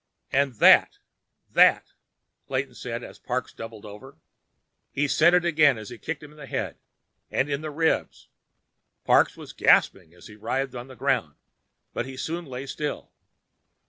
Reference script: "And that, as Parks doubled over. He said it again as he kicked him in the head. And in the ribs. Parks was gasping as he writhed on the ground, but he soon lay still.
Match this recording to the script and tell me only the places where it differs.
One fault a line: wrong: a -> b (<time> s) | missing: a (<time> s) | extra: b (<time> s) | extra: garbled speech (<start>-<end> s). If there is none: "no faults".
extra: that Clayton said (1.5 s)